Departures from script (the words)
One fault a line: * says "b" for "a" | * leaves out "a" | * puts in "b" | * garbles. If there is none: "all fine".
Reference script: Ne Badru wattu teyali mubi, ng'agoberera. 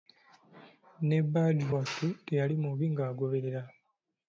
all fine